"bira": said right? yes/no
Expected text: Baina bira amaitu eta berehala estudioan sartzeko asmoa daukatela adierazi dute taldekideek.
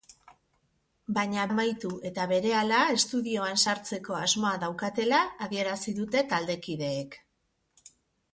no